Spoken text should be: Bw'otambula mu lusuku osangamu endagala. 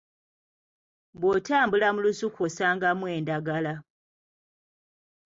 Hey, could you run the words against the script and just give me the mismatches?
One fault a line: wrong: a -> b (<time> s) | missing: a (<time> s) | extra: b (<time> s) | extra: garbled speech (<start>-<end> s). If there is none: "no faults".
no faults